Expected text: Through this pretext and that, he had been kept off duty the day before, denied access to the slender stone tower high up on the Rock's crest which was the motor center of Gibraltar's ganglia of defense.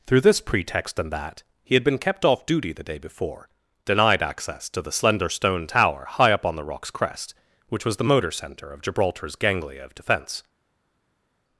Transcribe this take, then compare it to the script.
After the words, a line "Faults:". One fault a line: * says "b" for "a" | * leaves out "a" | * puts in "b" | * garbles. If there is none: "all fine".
Through this pretext and that, he had been kept off duty the day before, denied access to the slender stone tower high up on the Rock's crest which was the motor center of Gibraltar's ganglia of defense.
Faults:
all fine